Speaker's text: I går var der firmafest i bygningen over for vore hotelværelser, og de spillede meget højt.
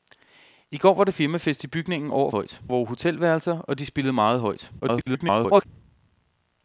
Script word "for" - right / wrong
wrong